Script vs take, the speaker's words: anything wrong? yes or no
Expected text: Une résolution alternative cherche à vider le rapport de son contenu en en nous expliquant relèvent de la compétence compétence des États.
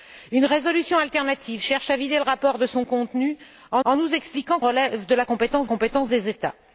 no